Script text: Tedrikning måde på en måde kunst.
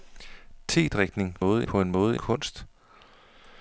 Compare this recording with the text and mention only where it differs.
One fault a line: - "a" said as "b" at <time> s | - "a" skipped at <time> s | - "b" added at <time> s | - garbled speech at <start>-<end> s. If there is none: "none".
none